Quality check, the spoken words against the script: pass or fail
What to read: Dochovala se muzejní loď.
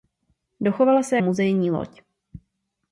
pass